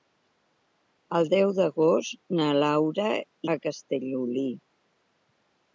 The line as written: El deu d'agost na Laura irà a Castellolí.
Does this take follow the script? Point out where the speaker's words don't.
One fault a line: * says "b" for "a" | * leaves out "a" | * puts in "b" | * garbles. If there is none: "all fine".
* leaves out "irà"